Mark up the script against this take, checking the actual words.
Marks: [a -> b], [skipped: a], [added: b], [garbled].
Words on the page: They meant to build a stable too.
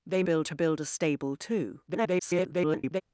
They [meant -> build] to build a stable too. [garbled]